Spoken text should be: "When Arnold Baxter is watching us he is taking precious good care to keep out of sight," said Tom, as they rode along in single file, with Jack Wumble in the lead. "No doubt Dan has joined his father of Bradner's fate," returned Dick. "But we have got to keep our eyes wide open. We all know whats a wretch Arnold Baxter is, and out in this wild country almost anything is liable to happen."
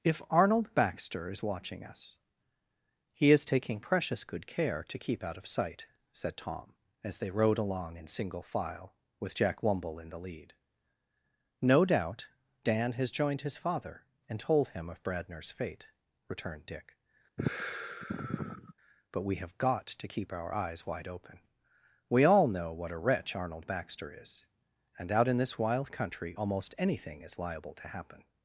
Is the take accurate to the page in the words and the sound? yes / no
no